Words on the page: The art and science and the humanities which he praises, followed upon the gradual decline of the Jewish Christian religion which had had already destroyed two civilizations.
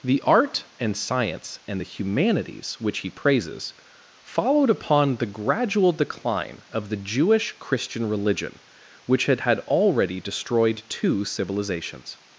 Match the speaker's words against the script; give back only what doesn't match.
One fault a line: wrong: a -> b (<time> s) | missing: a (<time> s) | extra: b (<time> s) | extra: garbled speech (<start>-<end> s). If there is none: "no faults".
no faults